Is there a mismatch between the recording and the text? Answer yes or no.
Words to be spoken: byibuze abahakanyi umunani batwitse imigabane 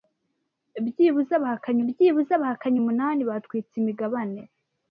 yes